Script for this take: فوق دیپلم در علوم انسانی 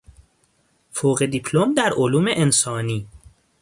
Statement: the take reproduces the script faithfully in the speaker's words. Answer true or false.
true